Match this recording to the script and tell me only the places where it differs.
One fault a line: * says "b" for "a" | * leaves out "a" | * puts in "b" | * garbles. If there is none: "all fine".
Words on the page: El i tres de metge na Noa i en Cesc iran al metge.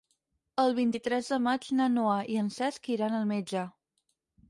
* puts in "vint"
* says "maig" for "metge"